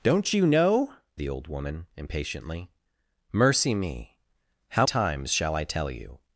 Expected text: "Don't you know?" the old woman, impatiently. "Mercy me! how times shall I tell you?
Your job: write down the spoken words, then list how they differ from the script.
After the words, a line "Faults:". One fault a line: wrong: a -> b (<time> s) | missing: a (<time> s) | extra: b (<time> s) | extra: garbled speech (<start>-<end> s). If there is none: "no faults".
"Don't you know?" the old woman, impatiently. "Mercy me! how times shall I tell you?
Faults:
no faults